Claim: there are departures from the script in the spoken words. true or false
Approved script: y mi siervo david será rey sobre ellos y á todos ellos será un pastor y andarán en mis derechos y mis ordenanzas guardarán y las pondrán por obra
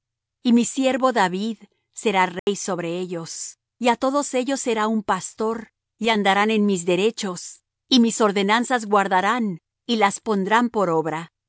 false